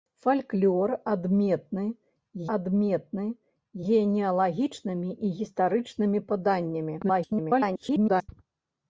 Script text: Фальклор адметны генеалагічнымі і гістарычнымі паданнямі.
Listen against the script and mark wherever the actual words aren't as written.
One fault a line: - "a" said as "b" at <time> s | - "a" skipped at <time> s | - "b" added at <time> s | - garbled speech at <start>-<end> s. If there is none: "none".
- "адметны" added at 2.5 s
- garbled speech at 7.0-8.3 s